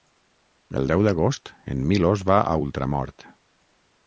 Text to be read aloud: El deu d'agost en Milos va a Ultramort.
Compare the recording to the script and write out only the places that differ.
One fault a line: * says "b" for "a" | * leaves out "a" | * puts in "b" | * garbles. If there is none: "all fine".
all fine